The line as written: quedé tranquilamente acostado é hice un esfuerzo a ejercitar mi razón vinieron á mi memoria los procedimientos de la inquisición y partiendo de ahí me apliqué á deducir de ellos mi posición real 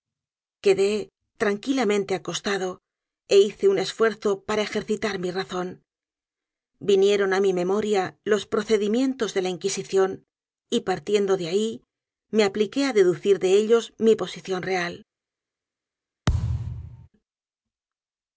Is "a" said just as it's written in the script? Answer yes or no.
no